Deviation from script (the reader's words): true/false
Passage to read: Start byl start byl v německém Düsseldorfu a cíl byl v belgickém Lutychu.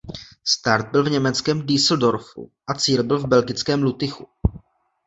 true